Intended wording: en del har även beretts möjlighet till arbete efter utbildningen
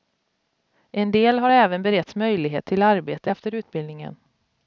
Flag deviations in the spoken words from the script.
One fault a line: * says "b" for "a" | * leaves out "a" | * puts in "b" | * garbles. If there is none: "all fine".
all fine